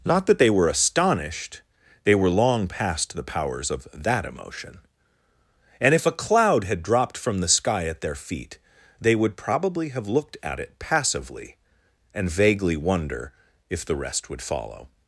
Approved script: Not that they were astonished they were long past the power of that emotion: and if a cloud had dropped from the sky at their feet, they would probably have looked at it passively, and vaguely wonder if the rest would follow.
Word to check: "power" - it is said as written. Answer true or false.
false